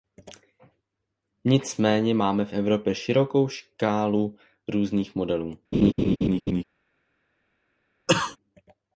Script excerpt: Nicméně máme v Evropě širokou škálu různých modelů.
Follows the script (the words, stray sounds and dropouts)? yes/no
no